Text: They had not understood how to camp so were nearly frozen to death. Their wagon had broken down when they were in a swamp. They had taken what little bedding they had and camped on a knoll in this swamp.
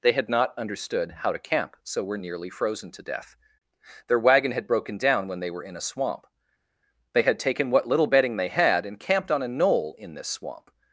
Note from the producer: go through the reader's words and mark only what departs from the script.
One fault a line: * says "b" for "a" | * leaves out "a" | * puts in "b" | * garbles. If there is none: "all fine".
all fine